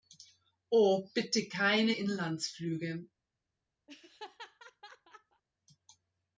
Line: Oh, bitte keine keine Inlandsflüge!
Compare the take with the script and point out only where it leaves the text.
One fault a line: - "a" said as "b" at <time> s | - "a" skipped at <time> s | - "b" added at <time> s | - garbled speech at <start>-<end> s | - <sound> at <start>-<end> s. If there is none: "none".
- "keine" skipped at 1.9 s
- laugh at 3.9-5.4 s